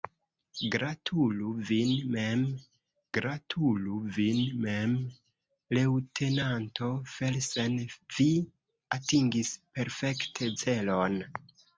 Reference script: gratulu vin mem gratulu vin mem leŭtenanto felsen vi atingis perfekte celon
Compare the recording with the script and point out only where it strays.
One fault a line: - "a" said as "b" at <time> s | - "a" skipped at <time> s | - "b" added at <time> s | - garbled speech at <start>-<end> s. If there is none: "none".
none